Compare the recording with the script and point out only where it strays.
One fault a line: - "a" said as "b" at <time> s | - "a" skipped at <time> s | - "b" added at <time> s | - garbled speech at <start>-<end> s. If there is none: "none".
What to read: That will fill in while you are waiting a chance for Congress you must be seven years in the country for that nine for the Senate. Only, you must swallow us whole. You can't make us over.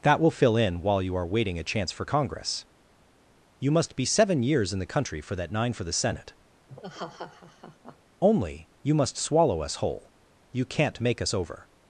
none